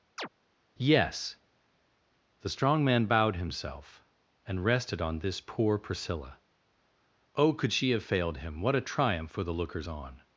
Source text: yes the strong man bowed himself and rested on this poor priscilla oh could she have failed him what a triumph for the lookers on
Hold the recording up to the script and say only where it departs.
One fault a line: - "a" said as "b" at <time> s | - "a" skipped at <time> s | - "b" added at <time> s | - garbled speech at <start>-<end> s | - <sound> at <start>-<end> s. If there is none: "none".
- chirp at 0.2-0.3 s